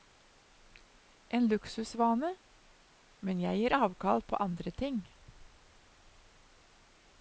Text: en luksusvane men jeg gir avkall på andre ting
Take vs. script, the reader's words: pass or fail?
pass